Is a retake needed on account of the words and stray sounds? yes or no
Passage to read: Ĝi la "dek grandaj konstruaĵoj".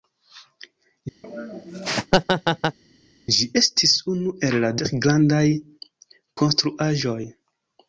yes